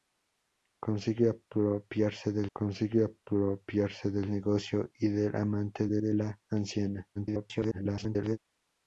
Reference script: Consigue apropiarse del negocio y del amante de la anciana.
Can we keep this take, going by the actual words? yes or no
no